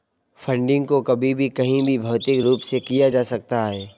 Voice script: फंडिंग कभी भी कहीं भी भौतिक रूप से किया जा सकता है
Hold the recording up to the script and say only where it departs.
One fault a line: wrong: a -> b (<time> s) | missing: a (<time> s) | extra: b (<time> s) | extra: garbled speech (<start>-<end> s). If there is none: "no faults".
extra: को (0.9 s)